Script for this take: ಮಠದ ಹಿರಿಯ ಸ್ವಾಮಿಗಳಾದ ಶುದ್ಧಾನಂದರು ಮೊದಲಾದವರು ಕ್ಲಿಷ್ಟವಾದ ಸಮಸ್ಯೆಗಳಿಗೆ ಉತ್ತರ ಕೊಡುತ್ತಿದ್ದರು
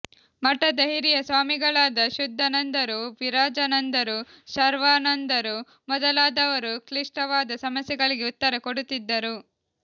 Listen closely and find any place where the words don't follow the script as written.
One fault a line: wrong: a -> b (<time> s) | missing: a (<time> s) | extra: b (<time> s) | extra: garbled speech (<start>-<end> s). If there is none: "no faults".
extra: ವಿರಜಾನಂದರು ಶರ್ವಾನಂದರು (3.2 s)